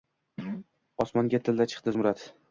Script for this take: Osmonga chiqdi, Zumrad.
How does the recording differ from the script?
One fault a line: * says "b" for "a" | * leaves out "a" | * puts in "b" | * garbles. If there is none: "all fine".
* puts in "tilla"